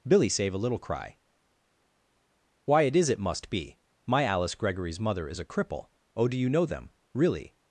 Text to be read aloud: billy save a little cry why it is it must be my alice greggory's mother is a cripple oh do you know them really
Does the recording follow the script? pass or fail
pass